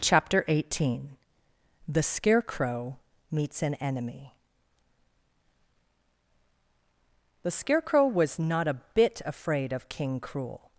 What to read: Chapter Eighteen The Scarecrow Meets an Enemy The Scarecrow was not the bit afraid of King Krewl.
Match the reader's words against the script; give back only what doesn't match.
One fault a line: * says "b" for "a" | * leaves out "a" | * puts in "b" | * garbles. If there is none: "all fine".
* says "a" for "the"